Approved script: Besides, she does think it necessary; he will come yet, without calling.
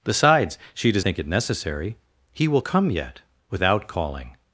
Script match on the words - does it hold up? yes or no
yes